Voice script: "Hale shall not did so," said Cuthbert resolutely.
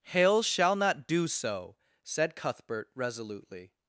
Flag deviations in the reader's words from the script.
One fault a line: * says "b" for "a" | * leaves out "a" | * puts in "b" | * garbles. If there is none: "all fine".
* says "do" for "did"